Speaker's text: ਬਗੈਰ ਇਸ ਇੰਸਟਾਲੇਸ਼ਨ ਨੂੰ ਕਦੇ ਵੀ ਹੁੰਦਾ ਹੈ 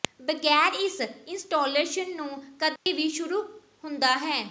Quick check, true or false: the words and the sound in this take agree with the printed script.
false